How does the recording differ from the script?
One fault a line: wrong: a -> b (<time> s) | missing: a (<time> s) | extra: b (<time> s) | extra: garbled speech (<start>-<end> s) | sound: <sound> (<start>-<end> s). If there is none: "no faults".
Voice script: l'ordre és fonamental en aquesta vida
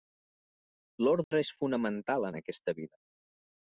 sound: dropout (1.2-1.3 s)